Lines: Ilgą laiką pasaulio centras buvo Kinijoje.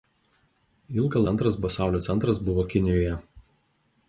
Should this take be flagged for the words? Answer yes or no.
yes